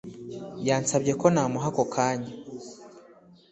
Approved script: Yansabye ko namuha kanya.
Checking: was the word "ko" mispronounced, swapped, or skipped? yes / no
no